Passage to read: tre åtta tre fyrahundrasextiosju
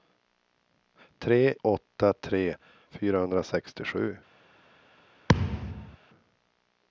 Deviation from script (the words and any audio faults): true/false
true